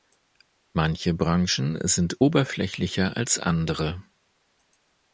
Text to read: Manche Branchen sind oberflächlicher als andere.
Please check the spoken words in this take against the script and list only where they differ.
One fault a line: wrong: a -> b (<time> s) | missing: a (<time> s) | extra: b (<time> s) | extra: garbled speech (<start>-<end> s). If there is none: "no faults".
no faults